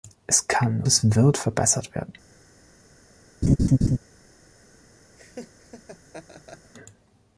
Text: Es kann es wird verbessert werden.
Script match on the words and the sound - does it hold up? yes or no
no